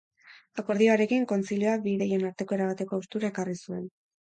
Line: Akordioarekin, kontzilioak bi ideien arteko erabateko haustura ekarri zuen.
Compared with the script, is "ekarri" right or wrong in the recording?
right